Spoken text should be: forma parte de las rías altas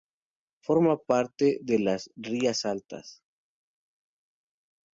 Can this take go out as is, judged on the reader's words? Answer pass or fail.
pass